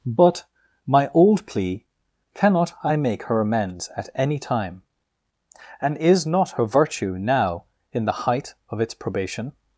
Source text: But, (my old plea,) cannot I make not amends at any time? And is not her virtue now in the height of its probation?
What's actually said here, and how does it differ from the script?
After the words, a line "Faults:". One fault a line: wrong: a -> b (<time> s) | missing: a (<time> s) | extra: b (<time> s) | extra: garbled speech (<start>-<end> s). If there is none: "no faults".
But, (my old plea,) cannot I make her amends at any time? And is not her virtue now in the height of its probation?
Faults:
wrong: not -> her (3.3 s)